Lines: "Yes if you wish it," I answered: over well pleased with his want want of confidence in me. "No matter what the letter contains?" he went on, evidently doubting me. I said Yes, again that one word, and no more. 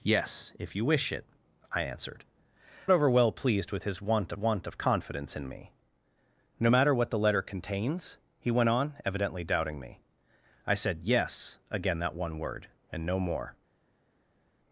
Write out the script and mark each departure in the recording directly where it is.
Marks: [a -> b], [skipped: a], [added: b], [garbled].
"Yes if you wish it," I answered: over well pleased with his want want of confidence in me. "No matter what the letter contains?" he went on, evidently doubting me. I said Yes, again that one word, and no more.